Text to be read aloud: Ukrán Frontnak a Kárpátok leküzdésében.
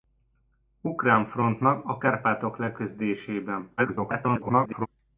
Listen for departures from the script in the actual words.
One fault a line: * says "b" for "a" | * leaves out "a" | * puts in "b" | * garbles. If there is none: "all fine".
* garbles